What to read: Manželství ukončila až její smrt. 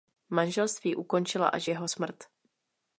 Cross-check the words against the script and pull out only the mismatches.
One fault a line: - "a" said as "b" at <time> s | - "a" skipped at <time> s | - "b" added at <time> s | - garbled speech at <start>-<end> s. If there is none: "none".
- "její" said as "jeho" at 1.7 s